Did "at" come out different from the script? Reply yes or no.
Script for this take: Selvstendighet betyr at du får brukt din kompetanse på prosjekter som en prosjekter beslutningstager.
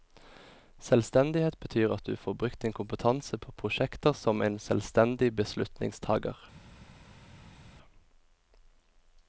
no